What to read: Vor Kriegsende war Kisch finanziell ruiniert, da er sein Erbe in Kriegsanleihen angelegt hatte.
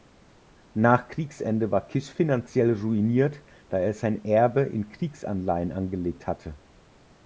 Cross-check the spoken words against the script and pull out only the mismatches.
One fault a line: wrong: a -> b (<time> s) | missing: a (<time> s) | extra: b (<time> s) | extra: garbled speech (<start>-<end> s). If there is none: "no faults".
wrong: Vor -> Nach (0.7 s)